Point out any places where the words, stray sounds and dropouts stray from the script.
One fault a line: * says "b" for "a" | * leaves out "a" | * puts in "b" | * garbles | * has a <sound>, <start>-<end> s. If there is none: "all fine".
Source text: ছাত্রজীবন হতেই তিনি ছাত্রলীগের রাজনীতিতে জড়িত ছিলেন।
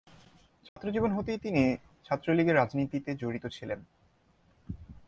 * has a dropout, 0.7-0.8 s